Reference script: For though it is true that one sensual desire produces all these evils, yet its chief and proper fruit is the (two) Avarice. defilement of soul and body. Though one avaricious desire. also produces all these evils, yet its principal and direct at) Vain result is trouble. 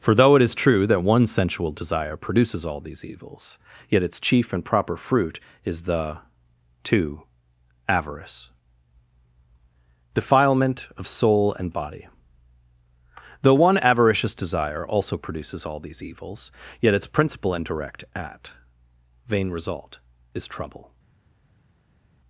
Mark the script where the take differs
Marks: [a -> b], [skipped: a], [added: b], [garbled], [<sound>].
For though it is true that one sensual desire produces all these evils, yet its chief and proper fruit is the (two) Avarice. defilement of soul and body. Though one avaricious desire. also produces all these evils, yet its principal and direct at) Vain result is trouble.